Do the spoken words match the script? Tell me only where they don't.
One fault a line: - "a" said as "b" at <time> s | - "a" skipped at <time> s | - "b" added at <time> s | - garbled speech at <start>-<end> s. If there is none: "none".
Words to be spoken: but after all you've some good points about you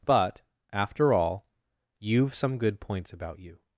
none